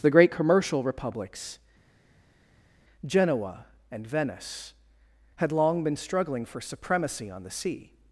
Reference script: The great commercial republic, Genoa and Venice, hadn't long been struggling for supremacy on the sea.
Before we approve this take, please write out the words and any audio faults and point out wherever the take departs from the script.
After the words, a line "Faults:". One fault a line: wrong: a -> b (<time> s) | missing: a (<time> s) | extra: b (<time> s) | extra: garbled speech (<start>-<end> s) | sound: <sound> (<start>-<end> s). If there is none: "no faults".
The great commercial republics, Genoa and Venice, had long been struggling for supremacy on the sea.
Faults:
wrong: republic -> republics (0.8 s)
wrong: hadn't -> had (5.4 s)